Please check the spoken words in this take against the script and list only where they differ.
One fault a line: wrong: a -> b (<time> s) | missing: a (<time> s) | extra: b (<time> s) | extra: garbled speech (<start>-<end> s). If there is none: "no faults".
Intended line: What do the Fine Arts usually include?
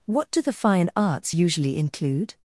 no faults